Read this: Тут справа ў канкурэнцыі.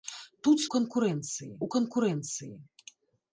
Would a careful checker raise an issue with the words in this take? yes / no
yes